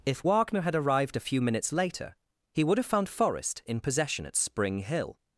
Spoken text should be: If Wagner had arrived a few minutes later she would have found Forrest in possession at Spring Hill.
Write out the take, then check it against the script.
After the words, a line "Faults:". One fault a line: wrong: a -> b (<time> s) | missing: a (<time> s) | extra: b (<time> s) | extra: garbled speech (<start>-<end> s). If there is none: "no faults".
If Wagner had arrived a few minutes later he would have found Forrest in possession at Spring Hill.
Faults:
wrong: she -> he (2.5 s)